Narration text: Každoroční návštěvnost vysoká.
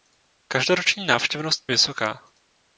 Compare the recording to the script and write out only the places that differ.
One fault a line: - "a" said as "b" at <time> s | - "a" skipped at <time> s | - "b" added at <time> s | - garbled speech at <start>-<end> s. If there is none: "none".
none